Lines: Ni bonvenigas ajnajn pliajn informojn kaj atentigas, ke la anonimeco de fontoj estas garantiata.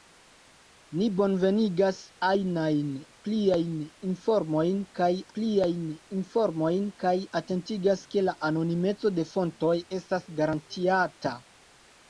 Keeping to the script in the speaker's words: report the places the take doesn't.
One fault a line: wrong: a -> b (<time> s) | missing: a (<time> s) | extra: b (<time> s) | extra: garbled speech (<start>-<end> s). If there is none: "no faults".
extra: pliajn informojn kaj (5.4 s)